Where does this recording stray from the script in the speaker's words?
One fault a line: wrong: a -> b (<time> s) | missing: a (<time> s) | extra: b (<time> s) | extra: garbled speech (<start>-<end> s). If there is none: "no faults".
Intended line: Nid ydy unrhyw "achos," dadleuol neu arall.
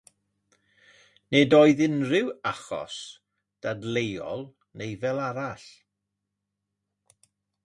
wrong: ydy -> oedd (1.6 s)
extra: fel (5.0 s)